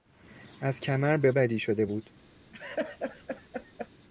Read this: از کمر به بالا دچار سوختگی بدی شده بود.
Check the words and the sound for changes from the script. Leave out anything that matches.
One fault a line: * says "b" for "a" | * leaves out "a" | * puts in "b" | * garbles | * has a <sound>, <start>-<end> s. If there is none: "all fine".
* leaves out "بالا دچار سوختگی"
* has a laugh, 2.5-3.9 s